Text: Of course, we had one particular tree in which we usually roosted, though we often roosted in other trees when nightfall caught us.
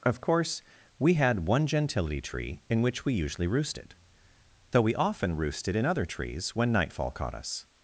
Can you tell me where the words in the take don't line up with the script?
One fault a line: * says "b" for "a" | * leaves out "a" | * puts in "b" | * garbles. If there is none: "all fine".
* says "gentility" for "particular"